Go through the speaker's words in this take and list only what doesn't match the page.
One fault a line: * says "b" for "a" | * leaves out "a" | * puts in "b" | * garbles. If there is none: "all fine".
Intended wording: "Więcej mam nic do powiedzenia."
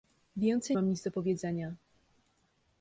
all fine